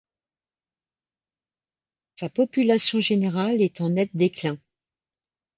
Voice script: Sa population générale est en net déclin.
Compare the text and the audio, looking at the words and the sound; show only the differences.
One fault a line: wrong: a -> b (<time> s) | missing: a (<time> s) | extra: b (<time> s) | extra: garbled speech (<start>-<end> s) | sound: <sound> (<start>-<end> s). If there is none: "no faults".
no faults